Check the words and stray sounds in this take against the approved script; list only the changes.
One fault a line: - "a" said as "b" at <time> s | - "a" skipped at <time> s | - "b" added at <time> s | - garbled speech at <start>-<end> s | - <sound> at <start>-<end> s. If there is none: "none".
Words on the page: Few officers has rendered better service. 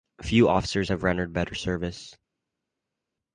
- "has" said as "have" at 0.9 s